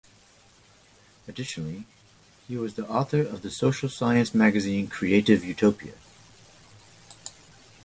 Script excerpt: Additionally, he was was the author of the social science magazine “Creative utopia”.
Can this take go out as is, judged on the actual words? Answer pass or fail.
fail